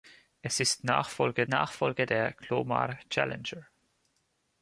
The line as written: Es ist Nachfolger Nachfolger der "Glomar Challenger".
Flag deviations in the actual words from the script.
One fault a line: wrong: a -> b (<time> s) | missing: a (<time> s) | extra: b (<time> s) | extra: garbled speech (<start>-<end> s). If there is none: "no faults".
no faults